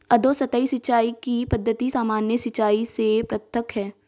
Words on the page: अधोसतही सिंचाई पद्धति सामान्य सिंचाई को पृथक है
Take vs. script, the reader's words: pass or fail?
fail